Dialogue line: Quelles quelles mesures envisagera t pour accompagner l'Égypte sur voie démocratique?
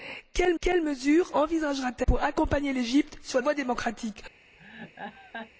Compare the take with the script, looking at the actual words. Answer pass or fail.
pass